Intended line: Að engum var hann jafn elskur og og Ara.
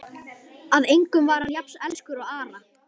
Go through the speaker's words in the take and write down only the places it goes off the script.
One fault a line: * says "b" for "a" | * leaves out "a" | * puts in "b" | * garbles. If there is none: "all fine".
* leaves out "og"